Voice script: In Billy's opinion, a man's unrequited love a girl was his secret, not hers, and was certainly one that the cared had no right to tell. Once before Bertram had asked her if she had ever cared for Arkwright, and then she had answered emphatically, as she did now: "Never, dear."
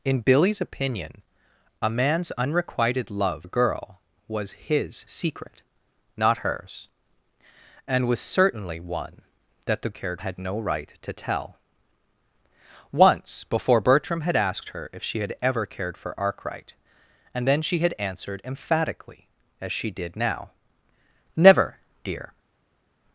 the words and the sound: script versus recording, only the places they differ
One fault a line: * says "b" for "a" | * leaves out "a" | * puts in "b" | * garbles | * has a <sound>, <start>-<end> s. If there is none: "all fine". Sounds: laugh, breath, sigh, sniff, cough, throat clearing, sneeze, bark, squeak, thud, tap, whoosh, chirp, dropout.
all fine